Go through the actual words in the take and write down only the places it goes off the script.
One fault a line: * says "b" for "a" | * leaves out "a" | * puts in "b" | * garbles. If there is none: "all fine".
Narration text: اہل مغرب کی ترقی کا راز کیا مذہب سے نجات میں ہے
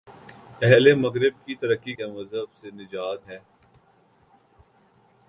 * leaves out "کا راز"
* leaves out "میں"